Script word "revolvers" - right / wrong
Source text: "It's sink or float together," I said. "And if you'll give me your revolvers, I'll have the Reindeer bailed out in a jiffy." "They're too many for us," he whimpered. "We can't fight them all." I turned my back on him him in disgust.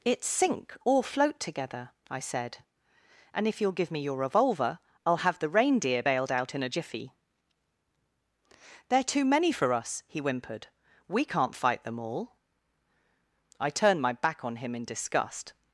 wrong